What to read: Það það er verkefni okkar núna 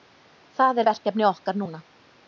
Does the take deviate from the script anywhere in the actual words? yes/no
yes